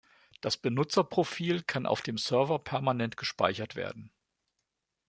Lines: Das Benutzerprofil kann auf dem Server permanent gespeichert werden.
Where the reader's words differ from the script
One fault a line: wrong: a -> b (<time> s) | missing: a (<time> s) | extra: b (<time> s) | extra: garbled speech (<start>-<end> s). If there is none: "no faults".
no faults